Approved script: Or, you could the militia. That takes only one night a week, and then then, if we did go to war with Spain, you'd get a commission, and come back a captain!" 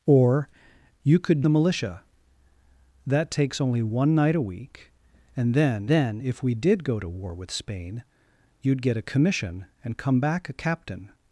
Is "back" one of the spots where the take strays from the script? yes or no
no